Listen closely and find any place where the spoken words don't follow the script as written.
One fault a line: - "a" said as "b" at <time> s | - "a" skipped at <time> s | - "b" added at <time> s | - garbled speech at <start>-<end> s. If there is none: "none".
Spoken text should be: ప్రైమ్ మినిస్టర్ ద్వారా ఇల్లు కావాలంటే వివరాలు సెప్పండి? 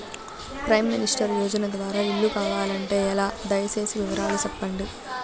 - "యోజన" added at 1.4 s
- "ఎలా దయ సేసి" added at 3.1 s